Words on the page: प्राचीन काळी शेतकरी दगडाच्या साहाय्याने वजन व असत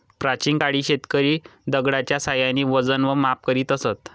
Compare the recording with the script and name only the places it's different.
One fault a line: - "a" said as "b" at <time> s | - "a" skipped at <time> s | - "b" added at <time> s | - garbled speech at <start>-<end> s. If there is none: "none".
- "माप करीत" added at 3.1 s